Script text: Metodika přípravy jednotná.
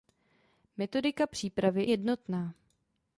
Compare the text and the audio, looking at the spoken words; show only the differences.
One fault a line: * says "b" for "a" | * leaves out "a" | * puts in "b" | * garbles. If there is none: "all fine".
all fine